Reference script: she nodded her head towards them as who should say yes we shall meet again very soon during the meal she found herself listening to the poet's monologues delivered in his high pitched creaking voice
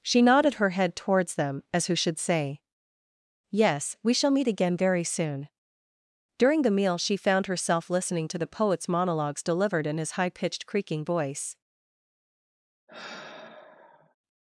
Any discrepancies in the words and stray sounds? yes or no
yes